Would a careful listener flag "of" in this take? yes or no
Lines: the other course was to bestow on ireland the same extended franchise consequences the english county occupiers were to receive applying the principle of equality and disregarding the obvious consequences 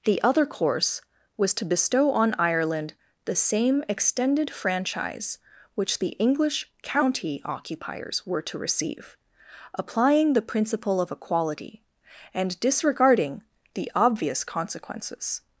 no